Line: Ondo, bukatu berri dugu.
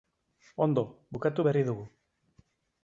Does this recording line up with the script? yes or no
yes